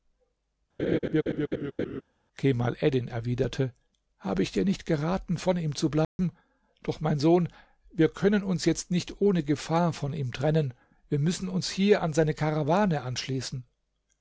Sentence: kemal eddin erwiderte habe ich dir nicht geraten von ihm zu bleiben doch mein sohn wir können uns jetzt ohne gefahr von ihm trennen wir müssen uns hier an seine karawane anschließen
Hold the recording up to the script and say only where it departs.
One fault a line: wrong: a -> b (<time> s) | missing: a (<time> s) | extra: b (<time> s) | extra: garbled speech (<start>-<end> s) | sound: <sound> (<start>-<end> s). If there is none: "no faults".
sound: laugh (0.8-2.0 s)
sound: dropout (6.0-6.2 s)
extra: nicht (8.9 s)